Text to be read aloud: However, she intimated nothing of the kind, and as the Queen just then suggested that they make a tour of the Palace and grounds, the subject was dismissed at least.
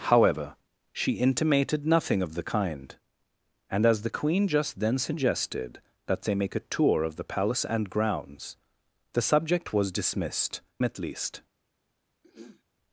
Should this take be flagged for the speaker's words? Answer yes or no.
no